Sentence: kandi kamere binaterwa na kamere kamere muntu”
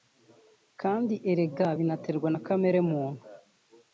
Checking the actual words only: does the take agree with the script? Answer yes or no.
no